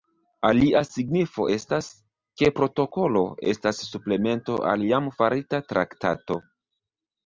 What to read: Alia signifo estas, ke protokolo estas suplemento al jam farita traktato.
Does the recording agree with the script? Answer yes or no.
yes